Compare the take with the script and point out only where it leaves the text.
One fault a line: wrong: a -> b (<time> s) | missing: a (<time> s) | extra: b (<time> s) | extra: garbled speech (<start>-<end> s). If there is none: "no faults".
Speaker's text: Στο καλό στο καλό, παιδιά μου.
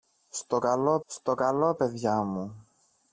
no faults